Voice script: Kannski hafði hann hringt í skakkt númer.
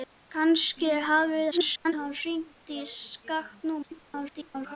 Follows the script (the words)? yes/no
no